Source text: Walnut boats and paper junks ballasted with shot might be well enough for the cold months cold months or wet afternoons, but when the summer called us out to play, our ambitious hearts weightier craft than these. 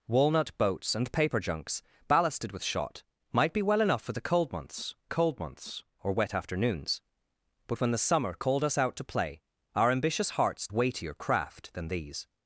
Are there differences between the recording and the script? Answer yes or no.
no